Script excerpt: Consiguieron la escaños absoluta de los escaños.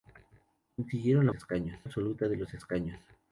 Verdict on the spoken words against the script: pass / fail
pass